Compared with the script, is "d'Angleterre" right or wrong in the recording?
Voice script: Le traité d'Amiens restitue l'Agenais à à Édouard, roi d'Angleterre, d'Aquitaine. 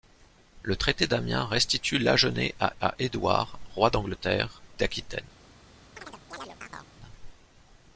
right